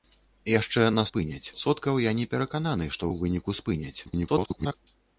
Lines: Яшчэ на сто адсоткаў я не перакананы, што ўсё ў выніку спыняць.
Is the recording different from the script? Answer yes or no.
yes